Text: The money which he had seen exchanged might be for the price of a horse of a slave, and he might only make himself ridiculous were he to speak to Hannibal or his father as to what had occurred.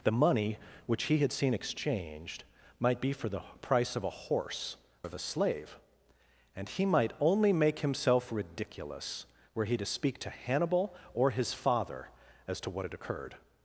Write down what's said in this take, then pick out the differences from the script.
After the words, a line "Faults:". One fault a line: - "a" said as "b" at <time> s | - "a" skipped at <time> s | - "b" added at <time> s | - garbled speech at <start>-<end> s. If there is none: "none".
The money which he had seen exchanged might be for the price of a horse of a slave, and he might only make himself ridiculous were he to speak to Hannibal or his father as to what had occurred.
Faults:
none